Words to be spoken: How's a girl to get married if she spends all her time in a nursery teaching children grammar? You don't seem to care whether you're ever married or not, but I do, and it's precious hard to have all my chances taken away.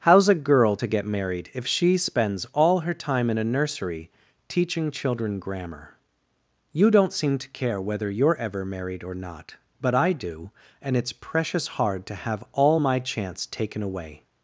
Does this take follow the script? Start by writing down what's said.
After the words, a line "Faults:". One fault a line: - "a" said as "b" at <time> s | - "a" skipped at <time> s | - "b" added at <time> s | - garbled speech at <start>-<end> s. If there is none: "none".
How's a girl to get married if she spends all her time in a nursery teaching children grammar? You don't seem to care whether you're ever married or not, but I do, and it's precious hard to have all my chance taken away.
Faults:
- "chances" said as "chance" at 13.0 s